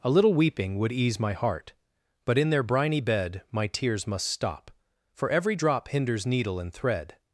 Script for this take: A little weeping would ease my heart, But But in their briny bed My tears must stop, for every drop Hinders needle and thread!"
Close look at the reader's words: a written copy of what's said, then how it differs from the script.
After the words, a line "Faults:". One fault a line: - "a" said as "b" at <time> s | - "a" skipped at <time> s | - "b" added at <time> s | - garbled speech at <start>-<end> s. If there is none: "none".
A little weeping would ease my heart, But in their briny bed My tears must stop, for every drop Hinders needle and thread!"
Faults:
- "But" skipped at 2.4 s